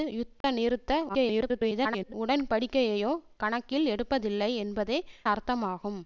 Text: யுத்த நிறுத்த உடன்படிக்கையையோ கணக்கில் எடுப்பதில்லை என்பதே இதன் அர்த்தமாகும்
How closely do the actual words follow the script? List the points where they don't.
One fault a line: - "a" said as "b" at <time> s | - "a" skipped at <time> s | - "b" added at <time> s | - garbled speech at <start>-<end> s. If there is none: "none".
- garbled speech at 1.1-2.1 s
- "இதன்" skipped at 5.0 s